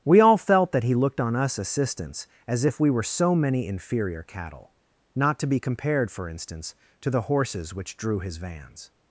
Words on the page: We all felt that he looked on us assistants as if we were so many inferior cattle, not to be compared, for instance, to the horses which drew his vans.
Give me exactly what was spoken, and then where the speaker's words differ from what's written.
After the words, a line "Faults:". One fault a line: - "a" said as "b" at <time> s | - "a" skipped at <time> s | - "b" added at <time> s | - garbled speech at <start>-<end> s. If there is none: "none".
We all felt that he looked on us assistants as if we were so many inferior cattle, not to be compared, for instance, to the horses which drew his vans.
Faults:
none